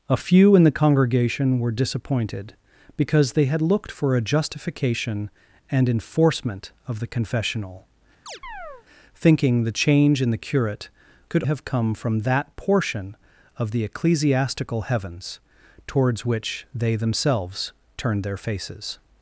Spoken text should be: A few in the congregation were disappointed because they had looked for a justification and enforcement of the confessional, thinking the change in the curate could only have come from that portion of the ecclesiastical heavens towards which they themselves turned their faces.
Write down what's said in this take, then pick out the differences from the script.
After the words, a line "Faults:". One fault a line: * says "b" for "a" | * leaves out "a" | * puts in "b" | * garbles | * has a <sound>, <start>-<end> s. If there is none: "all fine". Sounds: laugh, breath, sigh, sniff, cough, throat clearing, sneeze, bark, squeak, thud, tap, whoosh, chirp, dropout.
A few in the congregation were disappointed because they had looked for a justification and enforcement of the confessional, thinking the change in the curate could have come from that portion of the ecclesiastical heavens towards which they themselves turned their faces.
Faults:
* has a chirp, 8.3-8.9 s
* leaves out "only"